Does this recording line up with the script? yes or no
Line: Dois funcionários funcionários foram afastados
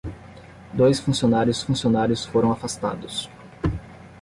yes